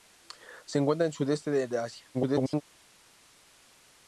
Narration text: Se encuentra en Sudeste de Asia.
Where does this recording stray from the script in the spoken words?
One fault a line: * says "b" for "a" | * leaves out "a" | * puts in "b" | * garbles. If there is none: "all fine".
* garbles